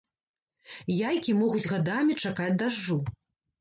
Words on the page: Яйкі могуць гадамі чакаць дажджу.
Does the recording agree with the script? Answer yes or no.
yes